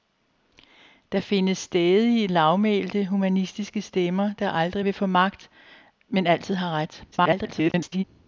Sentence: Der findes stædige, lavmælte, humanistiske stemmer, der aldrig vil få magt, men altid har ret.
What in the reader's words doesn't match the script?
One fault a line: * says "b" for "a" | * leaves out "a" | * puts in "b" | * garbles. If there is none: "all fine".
* garbles